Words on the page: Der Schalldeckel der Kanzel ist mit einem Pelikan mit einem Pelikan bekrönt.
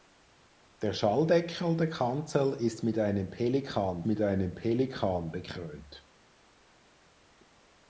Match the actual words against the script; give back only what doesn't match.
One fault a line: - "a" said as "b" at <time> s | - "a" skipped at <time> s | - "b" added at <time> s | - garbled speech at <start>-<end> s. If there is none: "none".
none